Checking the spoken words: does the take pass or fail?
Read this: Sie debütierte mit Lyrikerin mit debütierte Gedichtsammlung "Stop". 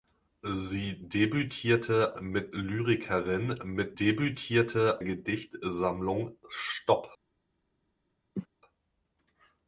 pass